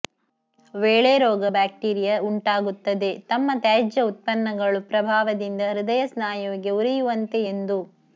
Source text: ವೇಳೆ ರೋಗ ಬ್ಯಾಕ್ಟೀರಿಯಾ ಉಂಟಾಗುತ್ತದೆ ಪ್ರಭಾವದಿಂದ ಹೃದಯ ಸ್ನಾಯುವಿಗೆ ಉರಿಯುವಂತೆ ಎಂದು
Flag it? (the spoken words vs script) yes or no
yes